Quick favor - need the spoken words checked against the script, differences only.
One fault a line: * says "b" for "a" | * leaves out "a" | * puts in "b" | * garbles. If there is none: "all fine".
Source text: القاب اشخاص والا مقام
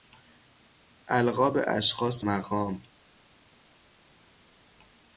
* leaves out "والا"